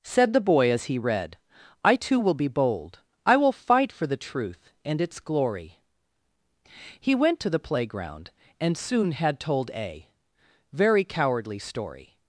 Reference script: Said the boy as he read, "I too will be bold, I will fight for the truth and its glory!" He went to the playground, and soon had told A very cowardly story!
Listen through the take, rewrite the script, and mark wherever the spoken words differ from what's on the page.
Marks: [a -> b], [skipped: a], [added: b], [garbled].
Said the boy as he read, "I too will be bold, I will fight for the truth and its glory!" He went to the playground, and soon had told A very cowardly story!